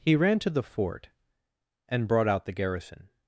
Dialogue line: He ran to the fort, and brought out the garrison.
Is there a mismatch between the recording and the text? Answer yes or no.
no